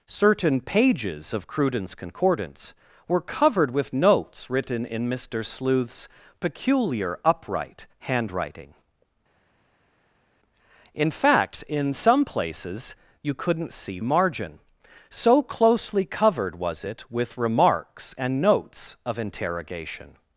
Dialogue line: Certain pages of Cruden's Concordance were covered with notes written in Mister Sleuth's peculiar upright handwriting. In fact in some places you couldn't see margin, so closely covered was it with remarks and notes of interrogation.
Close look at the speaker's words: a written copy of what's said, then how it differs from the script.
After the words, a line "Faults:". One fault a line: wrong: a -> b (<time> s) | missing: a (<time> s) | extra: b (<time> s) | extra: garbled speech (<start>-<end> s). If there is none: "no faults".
Certain pages of Cruden's Concordance were covered with notes written in Mister Sleuth's peculiar upright handwriting. In fact in some places you couldn't see margin, so closely covered was it with remarks and notes of interrogation.
Faults:
no faults